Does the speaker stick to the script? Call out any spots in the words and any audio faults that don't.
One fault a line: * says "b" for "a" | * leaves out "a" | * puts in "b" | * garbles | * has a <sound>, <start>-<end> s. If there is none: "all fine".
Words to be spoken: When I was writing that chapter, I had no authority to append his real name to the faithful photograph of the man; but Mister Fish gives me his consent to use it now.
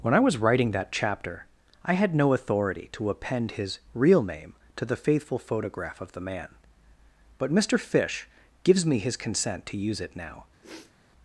* has a sniff, 10.6-10.9 s